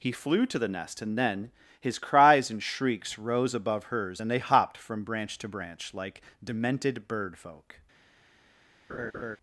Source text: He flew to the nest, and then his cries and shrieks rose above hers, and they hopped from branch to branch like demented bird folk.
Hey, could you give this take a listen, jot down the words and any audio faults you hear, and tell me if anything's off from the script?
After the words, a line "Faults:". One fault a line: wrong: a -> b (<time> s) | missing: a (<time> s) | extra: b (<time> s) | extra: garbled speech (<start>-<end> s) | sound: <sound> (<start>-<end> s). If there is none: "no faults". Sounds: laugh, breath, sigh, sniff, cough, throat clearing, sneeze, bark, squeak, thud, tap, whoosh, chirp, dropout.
He flew to the nest, and then his cries and shrieks rose above hers, and they hopped from branch to branch like demented bird folk.
Faults:
sound: laugh (8.9-9.4 s)